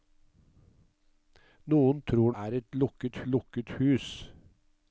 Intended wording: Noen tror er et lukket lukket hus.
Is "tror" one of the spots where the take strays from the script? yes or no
no